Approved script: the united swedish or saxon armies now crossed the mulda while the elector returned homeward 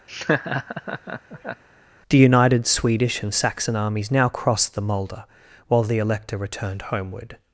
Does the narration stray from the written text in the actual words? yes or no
yes